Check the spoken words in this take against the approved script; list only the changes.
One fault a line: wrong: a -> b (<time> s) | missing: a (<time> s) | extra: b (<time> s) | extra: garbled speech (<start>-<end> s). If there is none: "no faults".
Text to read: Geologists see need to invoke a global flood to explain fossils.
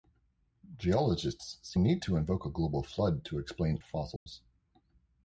no faults